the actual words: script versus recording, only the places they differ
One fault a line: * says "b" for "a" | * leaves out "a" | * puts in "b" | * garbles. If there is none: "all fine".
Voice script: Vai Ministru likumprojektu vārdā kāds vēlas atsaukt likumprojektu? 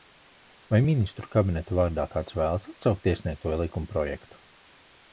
* says "kabineta" for "likumprojektu"
* puts in "iesniegto"